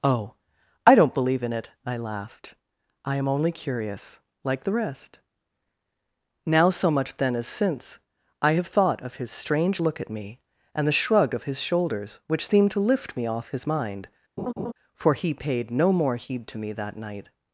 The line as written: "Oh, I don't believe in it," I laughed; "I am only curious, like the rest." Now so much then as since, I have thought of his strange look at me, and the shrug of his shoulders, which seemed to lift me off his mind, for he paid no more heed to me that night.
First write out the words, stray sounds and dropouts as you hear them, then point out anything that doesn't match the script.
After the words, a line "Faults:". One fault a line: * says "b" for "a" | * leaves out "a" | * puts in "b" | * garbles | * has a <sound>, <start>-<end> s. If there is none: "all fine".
"Oh, I don't believe in it," I laughed; "I am only curious, like the rest." Now so much then as since, I have thought of his strange look at me, and the shrug of his shoulders, which seemed to lift me off his mind, for he paid no more heed to me that night.
Faults:
* has a laugh, 14.4-14.7 s